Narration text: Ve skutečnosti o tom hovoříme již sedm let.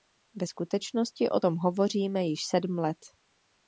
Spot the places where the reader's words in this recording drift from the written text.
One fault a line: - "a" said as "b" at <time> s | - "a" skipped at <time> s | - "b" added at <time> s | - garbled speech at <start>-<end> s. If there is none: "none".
none